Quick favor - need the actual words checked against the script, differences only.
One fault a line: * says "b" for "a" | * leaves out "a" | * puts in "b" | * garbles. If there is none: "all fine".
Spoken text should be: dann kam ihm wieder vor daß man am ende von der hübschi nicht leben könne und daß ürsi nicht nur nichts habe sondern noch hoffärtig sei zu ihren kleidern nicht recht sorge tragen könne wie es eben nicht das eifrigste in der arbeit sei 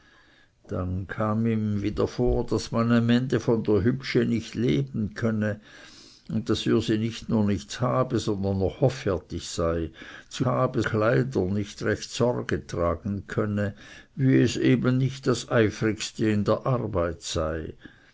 * says "habe" for "ihren"